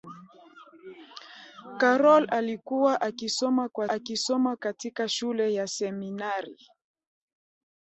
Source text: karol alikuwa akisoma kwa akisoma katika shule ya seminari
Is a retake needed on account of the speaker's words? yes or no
no